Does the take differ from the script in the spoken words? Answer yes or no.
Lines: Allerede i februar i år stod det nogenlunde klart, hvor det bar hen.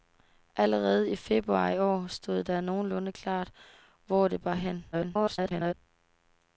yes